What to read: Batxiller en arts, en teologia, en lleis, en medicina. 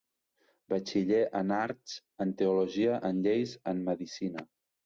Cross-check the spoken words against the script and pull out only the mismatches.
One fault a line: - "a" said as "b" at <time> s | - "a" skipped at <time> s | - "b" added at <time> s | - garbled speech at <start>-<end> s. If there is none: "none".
none